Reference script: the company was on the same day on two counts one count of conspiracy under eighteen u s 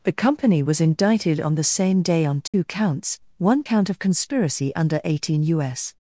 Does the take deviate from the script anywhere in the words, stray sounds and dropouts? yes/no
yes